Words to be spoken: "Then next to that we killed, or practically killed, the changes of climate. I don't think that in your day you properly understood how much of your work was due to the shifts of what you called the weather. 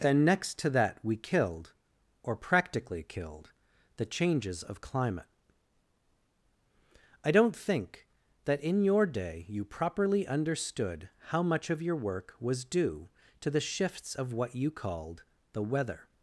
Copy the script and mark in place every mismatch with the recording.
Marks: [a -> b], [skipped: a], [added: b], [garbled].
"Then next to that we killed, or practically killed, the changes of climate. I don't think that in your day you properly understood how much of your work was due to the shifts of what you called the weather.